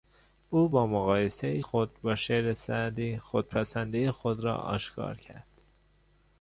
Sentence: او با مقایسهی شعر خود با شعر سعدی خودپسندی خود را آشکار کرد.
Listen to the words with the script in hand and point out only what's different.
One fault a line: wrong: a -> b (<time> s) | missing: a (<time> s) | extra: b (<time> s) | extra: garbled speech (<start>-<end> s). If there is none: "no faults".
missing: شعر (1.6 s)